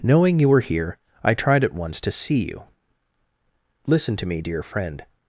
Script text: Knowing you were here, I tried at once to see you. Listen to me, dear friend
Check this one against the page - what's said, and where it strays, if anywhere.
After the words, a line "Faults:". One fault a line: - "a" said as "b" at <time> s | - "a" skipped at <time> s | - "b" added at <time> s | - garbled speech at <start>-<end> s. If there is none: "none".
Knowing you were here, I tried at once to see you. Listen to me, dear friend
Faults:
none